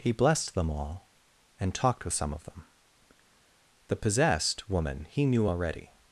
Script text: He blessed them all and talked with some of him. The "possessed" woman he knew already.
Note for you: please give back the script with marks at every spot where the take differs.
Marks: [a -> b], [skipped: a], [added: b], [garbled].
He blessed them all and talked with some of [him. -> them] The "possessed" woman he knew already.